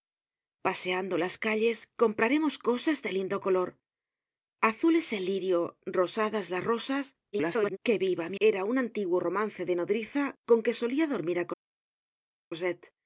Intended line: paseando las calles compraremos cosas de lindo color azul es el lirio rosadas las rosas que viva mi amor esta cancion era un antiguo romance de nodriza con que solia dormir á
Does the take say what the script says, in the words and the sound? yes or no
no